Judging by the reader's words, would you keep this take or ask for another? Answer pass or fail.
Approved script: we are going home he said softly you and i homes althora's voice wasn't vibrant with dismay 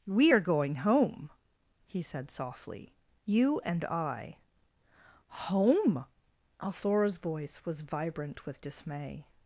fail